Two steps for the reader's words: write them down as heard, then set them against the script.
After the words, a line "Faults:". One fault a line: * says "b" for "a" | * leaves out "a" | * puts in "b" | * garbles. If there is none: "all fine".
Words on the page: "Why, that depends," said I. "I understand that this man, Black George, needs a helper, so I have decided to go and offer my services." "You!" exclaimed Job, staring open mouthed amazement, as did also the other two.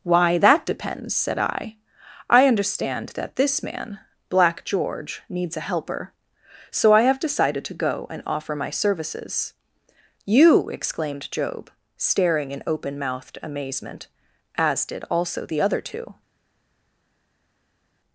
"Why, that depends," said I. "I understand that this man, Black George, needs a helper, so I have decided to go and offer my services." "You!" exclaimed Job, staring in open mouthed amazement, as did also the other two.
Faults:
* puts in "in"